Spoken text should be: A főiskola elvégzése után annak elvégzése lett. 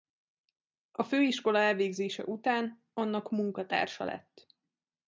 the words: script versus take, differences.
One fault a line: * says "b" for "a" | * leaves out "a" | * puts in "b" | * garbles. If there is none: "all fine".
* says "munkatársa" for "elvégzése"